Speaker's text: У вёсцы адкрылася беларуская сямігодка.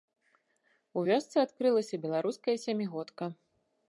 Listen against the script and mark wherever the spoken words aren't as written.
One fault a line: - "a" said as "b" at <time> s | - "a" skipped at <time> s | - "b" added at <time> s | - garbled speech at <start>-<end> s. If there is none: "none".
none